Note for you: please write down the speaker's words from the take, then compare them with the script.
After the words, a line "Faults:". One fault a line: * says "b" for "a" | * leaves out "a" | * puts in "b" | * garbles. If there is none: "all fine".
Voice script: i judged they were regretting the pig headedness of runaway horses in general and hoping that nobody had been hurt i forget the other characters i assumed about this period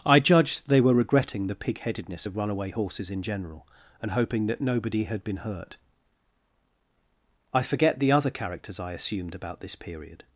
i judged they were regretting the pig headedness of runaway horses in general and hoping that nobody had been hurt i forget the other characters i assumed about this period
Faults:
all fine